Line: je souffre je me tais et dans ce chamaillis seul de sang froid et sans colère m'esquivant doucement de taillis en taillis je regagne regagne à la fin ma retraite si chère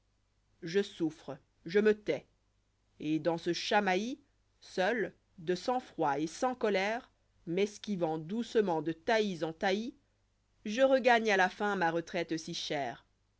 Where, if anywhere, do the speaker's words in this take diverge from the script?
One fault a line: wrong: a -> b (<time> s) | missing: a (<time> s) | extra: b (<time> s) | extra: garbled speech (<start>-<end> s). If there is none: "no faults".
missing: regagne (11.3 s)